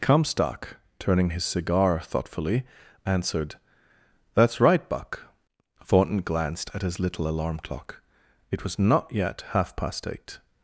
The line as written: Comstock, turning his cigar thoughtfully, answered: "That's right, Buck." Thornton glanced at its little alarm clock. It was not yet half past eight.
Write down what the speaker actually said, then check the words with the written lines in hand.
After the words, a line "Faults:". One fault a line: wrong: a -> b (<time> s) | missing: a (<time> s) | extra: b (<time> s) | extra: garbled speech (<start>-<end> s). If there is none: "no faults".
Comstock, turning his cigar thoughtfully, answered: "That's right, Buck." Thornton glanced at his little alarm clock. It was not yet half past eight.
Faults:
wrong: its -> his (6.8 s)